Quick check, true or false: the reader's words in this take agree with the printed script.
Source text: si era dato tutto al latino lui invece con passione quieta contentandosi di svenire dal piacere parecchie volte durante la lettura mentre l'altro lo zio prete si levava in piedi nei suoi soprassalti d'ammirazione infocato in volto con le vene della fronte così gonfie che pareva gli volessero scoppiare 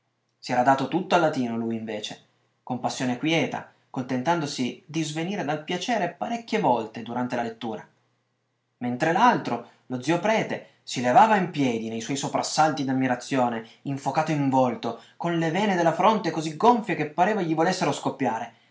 true